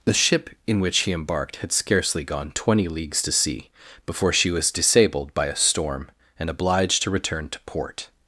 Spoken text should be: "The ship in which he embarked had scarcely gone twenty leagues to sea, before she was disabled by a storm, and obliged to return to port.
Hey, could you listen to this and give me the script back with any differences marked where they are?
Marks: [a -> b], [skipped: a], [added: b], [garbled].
"The ship in which he embarked had scarcely gone twenty leagues to sea, before she was disabled by a storm, and obliged to return to port.